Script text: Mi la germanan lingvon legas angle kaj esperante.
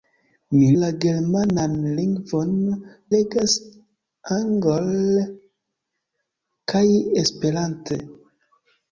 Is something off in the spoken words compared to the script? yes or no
no